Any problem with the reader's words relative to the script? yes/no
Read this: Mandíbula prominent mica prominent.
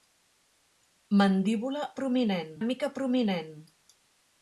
no